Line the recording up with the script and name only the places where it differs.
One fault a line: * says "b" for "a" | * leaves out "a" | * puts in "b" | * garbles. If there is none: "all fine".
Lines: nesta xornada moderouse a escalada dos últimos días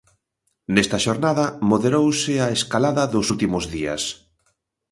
all fine